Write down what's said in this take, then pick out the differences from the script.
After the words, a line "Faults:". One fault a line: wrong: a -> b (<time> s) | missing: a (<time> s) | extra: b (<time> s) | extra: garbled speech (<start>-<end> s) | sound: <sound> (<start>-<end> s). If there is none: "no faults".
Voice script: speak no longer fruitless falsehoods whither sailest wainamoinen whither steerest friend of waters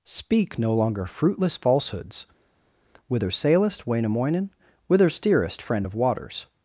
speak no longer fruitless falsehoods whither sailest wainamoinen whither steerest friend of waters
Faults:
no faults